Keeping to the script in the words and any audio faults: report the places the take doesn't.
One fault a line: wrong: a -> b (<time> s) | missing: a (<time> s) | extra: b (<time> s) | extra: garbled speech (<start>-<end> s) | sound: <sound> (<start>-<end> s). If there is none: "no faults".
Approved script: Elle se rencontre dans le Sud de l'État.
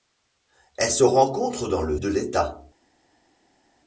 missing: Sud (2.0 s)